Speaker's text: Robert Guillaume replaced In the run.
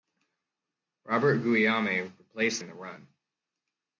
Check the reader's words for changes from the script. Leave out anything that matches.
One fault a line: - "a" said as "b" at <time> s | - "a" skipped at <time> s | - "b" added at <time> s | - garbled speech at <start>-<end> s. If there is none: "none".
none